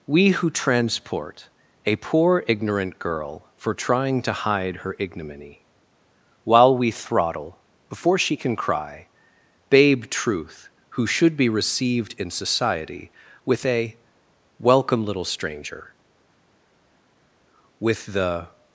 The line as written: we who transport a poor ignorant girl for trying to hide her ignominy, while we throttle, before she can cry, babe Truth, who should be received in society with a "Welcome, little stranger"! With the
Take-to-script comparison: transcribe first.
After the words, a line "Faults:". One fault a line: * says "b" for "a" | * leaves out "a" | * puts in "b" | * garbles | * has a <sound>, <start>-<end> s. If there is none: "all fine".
we who transport a poor ignorant girl for trying to hide her ignominy, while we throttle, before she can cry, babe Truth, who should be received in society with a "Welcome, little stranger"! With the
Faults:
all fine